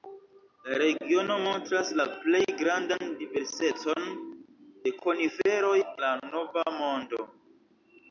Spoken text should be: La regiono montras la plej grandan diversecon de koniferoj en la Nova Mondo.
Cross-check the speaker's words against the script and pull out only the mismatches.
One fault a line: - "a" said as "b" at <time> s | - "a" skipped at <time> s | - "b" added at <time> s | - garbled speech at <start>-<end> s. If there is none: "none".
- "en" skipped at 5.8 s